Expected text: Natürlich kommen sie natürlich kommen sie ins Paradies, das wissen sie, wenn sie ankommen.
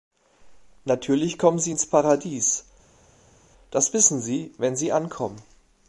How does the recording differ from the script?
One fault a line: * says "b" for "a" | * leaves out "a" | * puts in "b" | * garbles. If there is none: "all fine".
* leaves out "natürlich kommen sie"